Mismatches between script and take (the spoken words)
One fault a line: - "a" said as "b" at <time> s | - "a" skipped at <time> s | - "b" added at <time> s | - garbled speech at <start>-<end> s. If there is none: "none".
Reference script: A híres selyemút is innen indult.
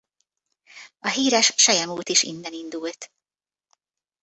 none